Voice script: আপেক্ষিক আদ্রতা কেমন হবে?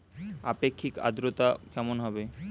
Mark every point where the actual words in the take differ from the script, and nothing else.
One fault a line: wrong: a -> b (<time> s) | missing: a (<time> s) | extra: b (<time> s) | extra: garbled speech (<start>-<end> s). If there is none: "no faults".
no faults